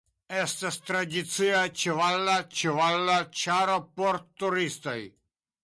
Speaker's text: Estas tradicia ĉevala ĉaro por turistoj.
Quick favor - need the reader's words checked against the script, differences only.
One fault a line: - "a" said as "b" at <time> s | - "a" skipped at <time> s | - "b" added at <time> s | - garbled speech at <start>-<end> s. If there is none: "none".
- "ĉevala" added at 2.6 s